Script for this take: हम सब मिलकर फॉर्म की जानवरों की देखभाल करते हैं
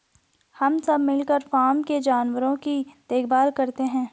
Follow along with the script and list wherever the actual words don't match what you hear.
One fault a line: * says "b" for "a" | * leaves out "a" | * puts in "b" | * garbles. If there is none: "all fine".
* says "के" for "की"